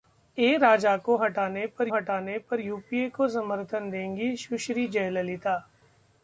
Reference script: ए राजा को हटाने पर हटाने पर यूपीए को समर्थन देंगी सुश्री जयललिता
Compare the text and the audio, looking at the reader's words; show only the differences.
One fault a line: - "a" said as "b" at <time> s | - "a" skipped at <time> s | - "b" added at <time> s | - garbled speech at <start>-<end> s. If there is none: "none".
none